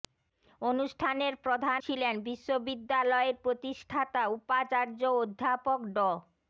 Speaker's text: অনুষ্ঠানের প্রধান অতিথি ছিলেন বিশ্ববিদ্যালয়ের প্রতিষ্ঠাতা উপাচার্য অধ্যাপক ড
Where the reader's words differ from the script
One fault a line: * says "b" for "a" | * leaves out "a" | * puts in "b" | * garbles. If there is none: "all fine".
* leaves out "অতিথি"